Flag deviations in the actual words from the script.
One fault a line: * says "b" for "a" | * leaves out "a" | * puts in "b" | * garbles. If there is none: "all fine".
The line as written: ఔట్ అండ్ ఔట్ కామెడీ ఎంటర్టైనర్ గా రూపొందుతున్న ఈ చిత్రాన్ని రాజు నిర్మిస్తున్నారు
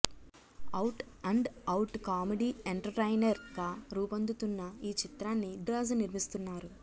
all fine